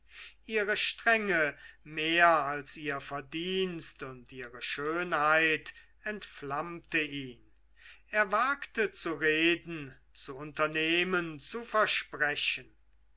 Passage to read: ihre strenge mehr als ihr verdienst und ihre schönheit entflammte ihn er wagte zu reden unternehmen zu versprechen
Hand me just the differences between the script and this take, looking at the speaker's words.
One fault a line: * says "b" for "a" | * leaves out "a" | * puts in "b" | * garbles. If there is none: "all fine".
* puts in "zu"